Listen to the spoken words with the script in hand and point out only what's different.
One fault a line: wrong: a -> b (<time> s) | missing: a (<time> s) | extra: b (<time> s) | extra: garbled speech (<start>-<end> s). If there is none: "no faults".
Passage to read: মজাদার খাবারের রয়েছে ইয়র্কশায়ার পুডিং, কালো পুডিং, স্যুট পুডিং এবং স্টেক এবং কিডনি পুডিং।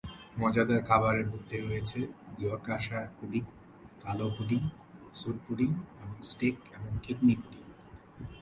extra: মধ্যে (1.3 s)